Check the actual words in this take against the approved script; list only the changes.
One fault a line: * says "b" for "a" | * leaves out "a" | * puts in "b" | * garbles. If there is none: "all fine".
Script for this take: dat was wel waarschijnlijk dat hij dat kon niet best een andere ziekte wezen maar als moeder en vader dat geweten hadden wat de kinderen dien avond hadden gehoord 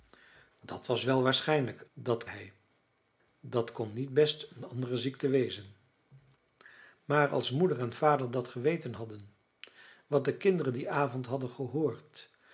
all fine